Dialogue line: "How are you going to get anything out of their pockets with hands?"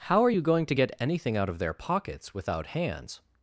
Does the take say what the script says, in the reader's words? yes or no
no